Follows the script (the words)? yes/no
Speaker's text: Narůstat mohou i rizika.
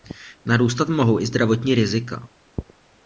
no